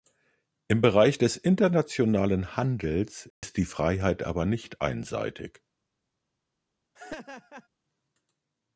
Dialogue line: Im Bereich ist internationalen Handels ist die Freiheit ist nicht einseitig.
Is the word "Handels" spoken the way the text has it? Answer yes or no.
yes